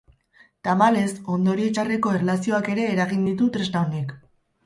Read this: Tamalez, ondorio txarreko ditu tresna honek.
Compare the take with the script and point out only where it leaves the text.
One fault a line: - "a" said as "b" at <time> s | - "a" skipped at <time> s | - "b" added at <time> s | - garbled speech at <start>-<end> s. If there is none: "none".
- "erlazioak ere eragin" added at 2.2 s